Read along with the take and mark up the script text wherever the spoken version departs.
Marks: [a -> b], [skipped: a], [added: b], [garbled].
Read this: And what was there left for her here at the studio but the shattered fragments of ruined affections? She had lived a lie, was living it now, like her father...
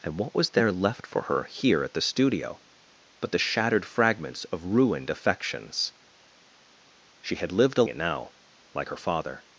And what was there left for her here at the studio but the shattered fragments of ruined affections? She had lived a [skipped: lie, was living] it now, like her father...